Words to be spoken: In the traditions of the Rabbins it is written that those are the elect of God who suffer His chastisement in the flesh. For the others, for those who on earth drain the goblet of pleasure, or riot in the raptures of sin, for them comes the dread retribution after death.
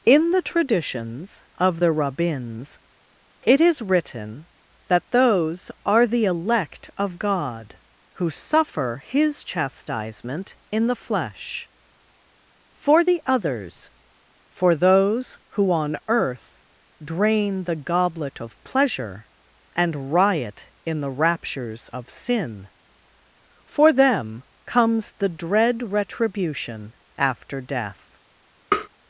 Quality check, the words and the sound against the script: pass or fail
fail